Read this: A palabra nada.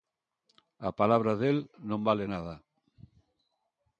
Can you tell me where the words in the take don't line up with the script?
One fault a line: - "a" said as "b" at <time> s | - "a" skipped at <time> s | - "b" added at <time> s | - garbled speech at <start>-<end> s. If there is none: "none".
- "del non vale" added at 1.4 s